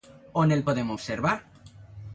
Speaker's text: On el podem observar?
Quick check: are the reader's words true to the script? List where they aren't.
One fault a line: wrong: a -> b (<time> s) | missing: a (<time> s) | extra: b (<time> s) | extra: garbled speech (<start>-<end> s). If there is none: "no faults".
no faults